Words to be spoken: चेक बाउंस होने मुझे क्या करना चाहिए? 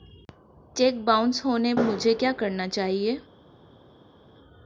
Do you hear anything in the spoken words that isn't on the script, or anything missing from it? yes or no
no